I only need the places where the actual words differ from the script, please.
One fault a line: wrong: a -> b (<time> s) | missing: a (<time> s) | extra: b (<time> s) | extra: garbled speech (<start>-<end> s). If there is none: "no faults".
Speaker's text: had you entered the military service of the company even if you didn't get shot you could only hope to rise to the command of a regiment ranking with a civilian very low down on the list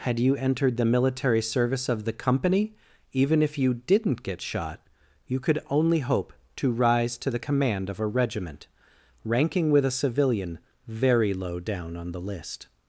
no faults